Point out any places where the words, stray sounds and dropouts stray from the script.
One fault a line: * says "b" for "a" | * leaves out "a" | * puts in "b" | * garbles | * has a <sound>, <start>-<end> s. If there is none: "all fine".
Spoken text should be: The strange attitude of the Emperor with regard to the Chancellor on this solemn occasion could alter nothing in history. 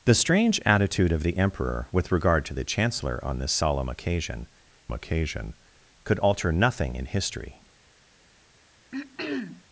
* puts in "occasion"
* has a throat clearing, 8.9-9.6 s